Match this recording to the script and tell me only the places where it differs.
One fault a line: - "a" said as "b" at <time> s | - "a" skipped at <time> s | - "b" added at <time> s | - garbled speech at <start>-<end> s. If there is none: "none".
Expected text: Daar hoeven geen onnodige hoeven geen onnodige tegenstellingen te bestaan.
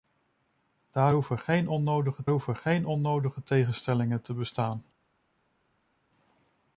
none